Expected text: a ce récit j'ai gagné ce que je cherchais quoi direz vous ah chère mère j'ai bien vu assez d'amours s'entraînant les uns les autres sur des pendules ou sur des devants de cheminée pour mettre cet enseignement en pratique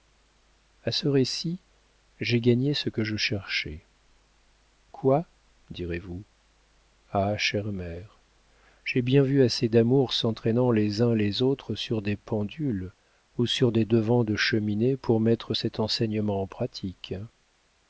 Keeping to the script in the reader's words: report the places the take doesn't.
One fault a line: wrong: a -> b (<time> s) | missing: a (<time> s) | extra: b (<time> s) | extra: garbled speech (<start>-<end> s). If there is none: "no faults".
no faults